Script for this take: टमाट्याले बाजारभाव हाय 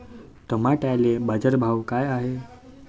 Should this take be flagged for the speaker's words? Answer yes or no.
yes